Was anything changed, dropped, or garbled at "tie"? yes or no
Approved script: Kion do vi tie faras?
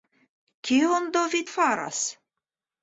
yes